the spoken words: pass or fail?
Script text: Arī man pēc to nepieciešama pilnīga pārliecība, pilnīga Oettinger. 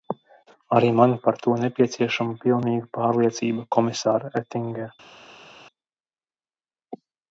fail